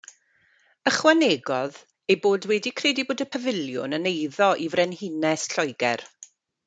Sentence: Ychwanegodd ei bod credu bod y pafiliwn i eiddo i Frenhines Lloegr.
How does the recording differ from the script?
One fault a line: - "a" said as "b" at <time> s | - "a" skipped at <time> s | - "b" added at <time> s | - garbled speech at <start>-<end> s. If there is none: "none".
- "wedi" added at 2.5 s
- "i" said as "yn" at 4.0 s